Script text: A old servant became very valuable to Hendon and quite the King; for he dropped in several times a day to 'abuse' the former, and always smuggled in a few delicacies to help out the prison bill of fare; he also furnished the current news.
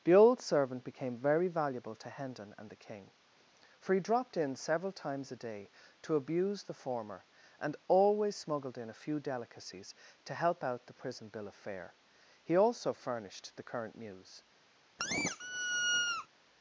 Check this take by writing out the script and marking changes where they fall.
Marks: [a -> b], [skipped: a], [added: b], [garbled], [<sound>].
[A -> The] old servant became very valuable to Hendon and [skipped: quite] the King; for he dropped in several times a day to 'abuse' the former, and always smuggled in a few delicacies to help out the prison bill of fare; he also furnished the current news. [squeak]